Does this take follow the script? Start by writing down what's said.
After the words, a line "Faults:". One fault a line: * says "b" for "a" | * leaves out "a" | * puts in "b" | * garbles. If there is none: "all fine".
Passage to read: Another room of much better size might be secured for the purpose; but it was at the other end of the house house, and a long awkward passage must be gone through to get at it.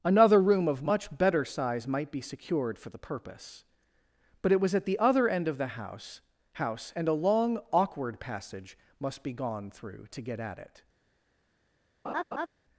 Another room of much better size might be secured for the purpose; but it was at the other end of the house house, and a long awkward passage must be gone through to get at it.
Faults:
all fine